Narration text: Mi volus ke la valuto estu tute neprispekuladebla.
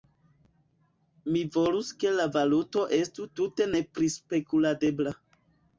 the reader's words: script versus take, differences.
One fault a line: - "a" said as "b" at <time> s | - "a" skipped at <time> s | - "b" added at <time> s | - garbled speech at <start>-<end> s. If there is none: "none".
none